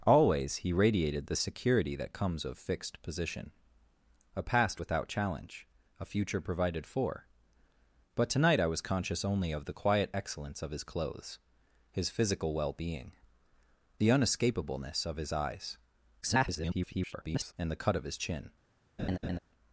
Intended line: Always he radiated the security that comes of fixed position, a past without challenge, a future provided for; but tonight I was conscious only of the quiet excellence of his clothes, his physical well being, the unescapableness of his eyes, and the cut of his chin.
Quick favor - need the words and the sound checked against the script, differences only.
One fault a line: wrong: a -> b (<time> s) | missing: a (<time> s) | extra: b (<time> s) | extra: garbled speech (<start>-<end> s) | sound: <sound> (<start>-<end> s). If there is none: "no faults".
extra: garbled speech (16.2-17.5 s)
sound: laugh (19.0-19.4 s)